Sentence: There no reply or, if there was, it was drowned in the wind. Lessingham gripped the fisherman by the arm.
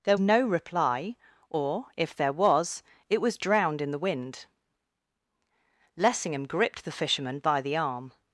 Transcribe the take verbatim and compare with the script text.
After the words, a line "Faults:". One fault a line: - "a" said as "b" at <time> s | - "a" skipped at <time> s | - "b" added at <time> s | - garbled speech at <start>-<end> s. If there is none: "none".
There no reply or, if there was, it was drowned in the wind. Lessingham gripped the fisherman by the arm.
Faults:
none